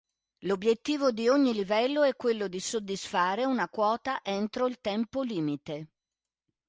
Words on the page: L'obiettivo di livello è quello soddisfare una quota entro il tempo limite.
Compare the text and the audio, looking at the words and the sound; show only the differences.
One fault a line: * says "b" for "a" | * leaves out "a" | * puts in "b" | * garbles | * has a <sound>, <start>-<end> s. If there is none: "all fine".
* puts in "ogni"
* puts in "di"